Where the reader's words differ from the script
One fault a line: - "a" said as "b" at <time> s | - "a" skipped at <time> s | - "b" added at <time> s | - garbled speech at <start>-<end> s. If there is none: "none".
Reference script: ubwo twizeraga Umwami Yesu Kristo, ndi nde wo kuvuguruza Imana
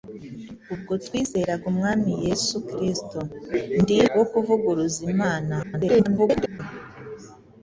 - "nde" skipped at 4.0 s
- garbled speech at 5.6-6.6 s